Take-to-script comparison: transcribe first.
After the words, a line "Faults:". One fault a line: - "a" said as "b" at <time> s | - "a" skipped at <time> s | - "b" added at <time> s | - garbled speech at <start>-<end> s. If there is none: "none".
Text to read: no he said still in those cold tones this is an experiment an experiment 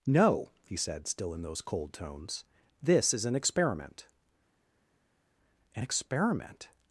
no he said still in those cold tones this is an experiment an experiment
Faults:
none